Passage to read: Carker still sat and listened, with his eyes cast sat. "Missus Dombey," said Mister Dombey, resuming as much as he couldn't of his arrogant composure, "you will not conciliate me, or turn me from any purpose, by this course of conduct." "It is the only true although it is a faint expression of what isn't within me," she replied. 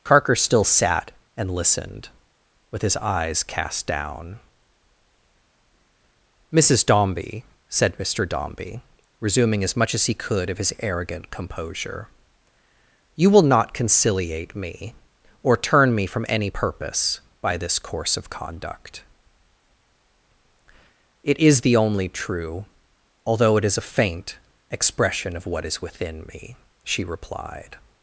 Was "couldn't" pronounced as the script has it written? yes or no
no